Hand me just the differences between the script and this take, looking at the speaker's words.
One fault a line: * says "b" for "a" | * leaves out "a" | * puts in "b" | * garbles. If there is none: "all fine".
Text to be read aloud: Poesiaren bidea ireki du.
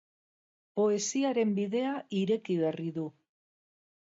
* puts in "berri"